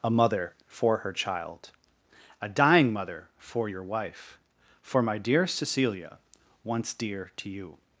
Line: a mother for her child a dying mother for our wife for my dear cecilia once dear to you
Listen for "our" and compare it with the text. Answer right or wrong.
wrong